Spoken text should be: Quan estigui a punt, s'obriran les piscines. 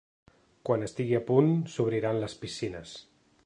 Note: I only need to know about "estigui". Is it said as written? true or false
true